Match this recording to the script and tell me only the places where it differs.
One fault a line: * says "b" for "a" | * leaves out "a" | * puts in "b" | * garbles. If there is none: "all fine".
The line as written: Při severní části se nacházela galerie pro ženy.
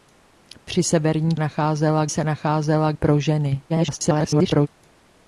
* says "nacházela" for "části"
* leaves out "galerie"
* garbles